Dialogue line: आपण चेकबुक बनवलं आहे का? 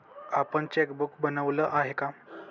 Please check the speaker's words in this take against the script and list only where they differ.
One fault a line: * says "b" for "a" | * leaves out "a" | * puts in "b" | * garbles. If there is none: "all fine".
all fine